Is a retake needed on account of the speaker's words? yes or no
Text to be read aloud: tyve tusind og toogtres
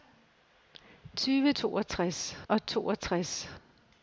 yes